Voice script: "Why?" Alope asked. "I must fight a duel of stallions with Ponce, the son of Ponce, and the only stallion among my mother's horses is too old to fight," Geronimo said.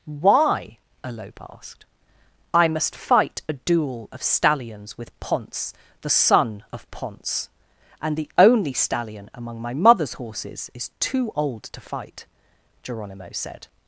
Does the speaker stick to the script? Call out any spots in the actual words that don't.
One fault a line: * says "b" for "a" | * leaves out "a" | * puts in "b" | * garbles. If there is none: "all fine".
all fine